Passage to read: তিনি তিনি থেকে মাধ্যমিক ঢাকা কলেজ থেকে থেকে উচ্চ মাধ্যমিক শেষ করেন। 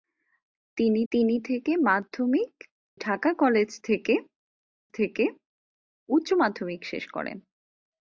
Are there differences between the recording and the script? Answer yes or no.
no